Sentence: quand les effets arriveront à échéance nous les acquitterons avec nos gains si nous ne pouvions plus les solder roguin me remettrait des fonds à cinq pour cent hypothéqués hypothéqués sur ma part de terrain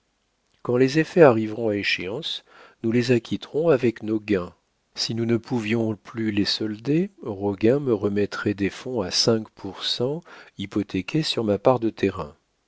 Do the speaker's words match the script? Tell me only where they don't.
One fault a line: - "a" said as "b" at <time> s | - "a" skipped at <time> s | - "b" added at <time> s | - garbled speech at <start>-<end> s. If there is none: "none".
- "hypothéqués" skipped at 11.2 s